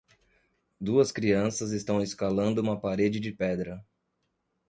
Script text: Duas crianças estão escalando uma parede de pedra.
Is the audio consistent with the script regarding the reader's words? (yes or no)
yes